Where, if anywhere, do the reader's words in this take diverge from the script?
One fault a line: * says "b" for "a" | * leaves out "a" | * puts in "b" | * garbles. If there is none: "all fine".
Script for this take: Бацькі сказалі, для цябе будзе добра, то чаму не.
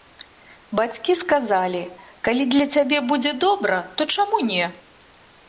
* puts in "калі"